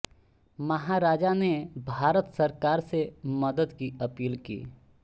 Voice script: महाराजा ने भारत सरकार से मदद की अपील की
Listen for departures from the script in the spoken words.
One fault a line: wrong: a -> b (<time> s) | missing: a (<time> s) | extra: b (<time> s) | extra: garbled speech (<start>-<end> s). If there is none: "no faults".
no faults